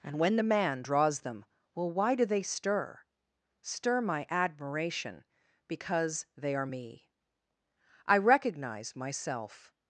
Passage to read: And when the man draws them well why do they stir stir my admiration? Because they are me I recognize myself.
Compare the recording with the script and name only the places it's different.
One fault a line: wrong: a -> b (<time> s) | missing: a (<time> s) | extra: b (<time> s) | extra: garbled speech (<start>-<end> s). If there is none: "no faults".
no faults